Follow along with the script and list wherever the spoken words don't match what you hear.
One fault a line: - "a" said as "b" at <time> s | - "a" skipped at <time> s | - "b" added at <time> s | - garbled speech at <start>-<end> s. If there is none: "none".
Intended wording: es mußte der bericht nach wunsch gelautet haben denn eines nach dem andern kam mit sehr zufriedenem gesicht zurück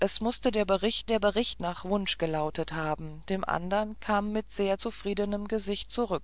- "der bericht" added at 1.1 s
- "denn eines nach" skipped at 3.2 s